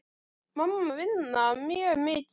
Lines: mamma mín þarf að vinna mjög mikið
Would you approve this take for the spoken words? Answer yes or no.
no